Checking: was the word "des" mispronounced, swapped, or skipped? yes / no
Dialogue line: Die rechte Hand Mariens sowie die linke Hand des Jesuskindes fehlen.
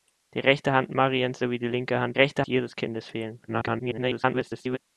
yes